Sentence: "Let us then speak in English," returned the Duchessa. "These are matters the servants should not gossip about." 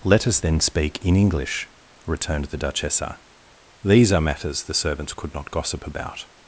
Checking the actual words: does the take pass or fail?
fail